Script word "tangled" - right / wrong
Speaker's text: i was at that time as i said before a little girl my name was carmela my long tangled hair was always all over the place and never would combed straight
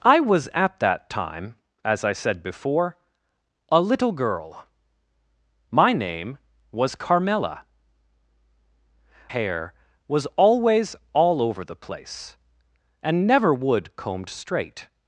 wrong